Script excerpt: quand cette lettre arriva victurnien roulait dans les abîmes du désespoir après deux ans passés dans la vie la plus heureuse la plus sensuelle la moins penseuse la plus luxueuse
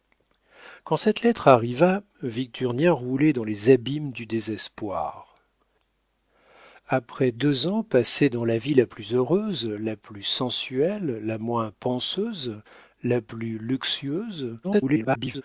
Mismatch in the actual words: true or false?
true